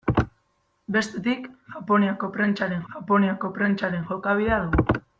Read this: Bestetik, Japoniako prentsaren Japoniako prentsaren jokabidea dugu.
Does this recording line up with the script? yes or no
yes